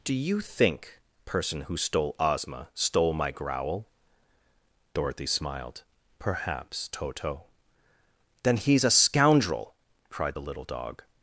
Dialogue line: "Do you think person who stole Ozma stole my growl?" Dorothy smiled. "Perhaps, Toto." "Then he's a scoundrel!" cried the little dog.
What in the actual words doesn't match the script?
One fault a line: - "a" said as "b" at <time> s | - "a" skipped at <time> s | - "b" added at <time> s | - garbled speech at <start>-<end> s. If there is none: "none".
none